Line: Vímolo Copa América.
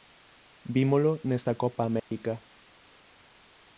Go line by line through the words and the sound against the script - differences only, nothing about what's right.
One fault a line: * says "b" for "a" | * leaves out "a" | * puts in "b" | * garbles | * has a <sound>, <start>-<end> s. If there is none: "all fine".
* puts in "nesta"
* has a dropout, 2.0-2.1 s